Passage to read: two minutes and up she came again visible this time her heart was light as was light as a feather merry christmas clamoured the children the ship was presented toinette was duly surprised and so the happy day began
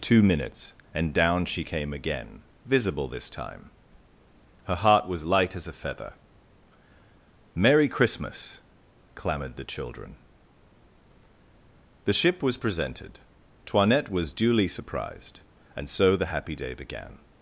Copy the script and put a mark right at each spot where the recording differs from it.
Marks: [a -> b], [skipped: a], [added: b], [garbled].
two minutes and [up -> down] she came again visible this time her heart was light as [skipped: was light as] a feather merry christmas clamoured the children the ship was presented toinette was duly surprised and so the happy day began